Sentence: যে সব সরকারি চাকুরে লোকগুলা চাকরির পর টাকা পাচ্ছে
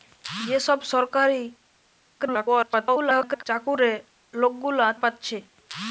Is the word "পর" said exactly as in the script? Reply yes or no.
no